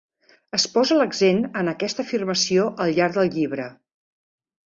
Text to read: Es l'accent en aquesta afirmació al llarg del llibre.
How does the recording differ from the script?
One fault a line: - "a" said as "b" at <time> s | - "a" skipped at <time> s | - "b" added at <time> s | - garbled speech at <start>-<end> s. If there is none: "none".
- "posa" added at 0.8 s